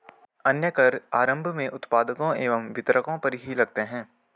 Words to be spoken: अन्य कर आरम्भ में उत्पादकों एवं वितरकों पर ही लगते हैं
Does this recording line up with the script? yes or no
yes